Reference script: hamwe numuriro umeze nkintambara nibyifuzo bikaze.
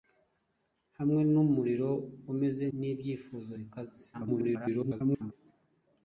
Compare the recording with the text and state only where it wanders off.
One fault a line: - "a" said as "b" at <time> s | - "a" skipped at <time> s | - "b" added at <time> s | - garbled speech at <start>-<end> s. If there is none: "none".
- "nkintambara" skipped at 2.6 s
- garbled speech at 4.1-5.3 s